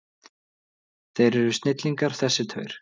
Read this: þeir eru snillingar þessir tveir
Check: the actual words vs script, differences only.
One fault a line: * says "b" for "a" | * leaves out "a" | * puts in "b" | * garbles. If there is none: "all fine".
all fine